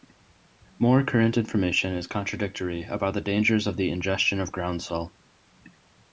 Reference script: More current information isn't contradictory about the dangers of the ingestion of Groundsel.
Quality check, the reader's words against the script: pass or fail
fail